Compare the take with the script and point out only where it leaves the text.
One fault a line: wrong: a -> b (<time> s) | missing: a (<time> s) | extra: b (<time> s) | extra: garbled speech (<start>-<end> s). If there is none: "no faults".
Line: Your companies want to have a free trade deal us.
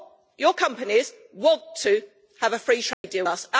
no faults